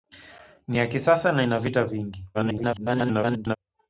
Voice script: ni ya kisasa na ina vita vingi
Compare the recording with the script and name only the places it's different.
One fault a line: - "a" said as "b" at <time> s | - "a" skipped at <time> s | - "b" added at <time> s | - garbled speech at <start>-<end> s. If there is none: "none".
- garbled speech at 2.3-3.6 s